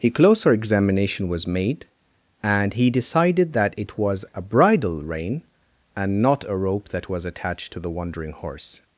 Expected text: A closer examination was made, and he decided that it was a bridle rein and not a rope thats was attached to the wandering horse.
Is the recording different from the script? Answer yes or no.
yes